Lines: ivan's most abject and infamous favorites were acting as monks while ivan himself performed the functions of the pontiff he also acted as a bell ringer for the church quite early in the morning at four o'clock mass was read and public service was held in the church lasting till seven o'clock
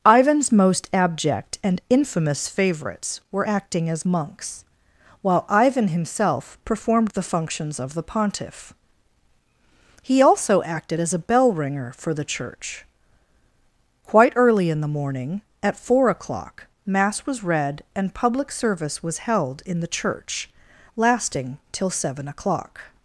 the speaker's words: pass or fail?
pass